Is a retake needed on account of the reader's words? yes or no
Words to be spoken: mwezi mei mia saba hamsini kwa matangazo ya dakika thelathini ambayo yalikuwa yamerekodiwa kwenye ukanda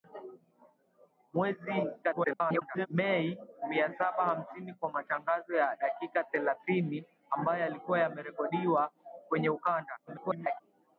yes